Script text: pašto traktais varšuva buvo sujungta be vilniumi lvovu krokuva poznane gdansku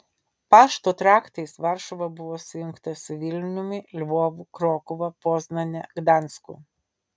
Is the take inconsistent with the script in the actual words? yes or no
yes